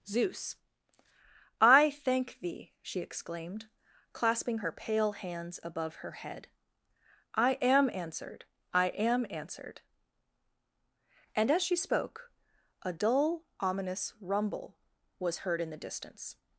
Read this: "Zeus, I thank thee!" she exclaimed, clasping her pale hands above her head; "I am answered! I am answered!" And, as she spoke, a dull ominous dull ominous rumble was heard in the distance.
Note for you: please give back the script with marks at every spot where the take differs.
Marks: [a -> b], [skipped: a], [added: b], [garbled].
"Zeus, I thank thee!" she exclaimed, clasping her pale hands above her head; "I am answered! I am answered!" And, as she spoke, a dull ominous [skipped: dull ominous] rumble was heard in the distance.